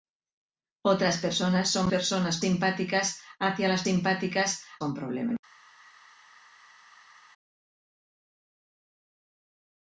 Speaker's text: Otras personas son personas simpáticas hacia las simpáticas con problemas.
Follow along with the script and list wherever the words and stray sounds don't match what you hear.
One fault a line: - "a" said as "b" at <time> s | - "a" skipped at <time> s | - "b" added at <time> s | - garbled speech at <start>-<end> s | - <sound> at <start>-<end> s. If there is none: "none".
none